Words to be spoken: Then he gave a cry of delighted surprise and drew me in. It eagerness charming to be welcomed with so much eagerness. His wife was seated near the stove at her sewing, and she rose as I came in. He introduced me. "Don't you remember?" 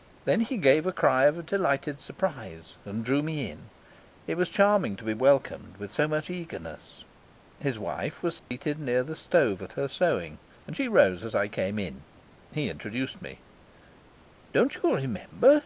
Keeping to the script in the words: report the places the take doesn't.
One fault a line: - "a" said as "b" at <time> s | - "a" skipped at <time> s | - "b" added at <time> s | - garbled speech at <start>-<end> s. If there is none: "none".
- "eagerness" said as "was" at 4.3 s